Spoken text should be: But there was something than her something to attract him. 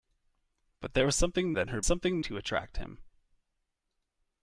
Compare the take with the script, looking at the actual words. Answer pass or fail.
pass